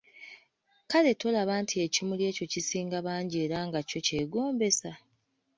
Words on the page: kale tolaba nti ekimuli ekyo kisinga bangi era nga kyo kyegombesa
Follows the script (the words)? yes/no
yes